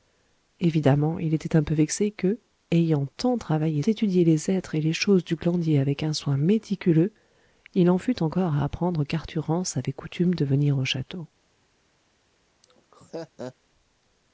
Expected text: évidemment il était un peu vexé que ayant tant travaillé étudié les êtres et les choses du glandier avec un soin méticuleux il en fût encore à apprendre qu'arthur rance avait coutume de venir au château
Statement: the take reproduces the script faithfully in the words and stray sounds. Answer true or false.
false